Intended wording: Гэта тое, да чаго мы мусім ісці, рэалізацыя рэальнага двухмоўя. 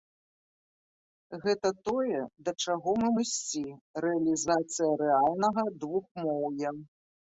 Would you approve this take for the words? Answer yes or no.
no